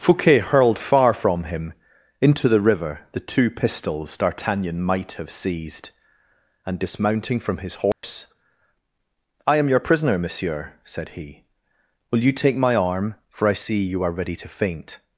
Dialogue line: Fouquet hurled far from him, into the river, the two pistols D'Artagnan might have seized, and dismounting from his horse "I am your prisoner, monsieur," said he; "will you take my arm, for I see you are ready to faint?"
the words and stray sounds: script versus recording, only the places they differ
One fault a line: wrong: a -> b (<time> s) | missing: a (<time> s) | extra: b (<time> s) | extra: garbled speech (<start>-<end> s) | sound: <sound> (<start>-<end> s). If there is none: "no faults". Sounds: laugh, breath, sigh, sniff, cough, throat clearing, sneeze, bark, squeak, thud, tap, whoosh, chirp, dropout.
sound: dropout (7.9-8.0 s)